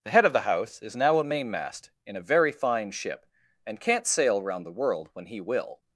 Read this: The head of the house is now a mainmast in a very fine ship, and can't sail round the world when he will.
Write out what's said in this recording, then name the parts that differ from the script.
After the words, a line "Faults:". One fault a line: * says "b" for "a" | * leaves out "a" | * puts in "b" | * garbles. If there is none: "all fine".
The head of the house is now a mainmast in a very fine ship, and can't sail round the world when he will.
Faults:
all fine